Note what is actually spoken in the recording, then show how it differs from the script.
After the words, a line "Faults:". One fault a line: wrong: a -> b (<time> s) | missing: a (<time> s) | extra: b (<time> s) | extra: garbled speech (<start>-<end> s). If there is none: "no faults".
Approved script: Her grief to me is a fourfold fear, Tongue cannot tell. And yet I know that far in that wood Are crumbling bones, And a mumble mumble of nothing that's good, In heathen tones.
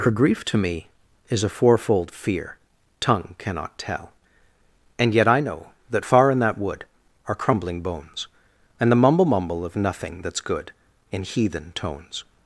Her grief to me is a fourfold fear, Tongue cannot tell. And yet I know that far in that wood Are crumbling bones, And the mumble mumble of nothing that's good, In heathen tones.
Faults:
wrong: a -> the (8.9 s)